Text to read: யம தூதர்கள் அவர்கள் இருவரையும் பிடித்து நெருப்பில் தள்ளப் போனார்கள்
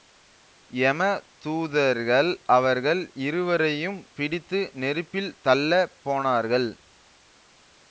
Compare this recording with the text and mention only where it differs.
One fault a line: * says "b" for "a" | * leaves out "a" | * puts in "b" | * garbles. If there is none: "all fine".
all fine